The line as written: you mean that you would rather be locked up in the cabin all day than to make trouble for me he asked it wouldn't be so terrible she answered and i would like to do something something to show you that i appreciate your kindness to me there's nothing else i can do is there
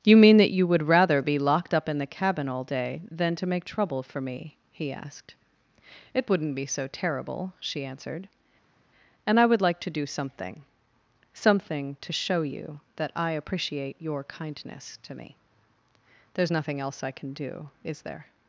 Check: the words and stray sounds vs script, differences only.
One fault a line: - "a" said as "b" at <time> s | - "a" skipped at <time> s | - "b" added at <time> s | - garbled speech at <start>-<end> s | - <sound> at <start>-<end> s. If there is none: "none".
none